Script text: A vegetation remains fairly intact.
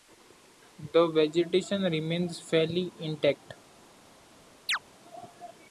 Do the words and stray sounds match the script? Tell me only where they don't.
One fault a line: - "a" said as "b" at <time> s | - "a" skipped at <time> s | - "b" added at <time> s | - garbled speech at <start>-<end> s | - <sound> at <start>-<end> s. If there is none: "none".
- "A" said as "The" at 0.9 s
- chirp at 4.7-4.8 s